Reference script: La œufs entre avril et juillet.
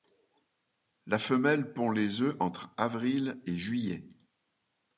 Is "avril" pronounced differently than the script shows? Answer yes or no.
no